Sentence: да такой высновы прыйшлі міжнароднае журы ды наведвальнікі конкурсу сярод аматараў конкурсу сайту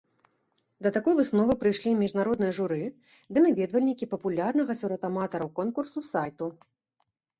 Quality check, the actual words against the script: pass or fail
fail